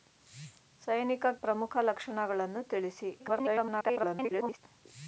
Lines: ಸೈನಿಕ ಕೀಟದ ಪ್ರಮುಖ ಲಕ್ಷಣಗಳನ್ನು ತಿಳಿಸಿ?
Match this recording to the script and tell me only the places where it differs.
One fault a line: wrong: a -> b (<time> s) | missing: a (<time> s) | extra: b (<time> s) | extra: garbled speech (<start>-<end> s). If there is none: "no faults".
missing: ಕೀಟದ (1.2 s)
extra: garbled speech (3.2-4.6 s)